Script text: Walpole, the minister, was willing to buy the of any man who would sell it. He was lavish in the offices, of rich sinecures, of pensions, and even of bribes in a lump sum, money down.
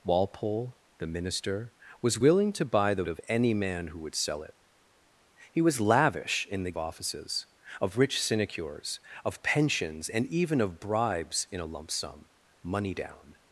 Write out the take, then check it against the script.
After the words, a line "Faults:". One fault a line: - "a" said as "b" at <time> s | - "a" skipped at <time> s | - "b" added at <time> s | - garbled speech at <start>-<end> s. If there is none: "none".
Walpole, the minister, was willing to buy the of any man who would sell it. He was lavish in the offices, of rich sinecures, of pensions, and even of bribes in a lump sum, money down.
Faults:
none